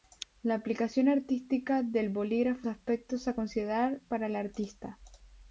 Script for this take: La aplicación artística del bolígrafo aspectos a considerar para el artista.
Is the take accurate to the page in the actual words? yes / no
yes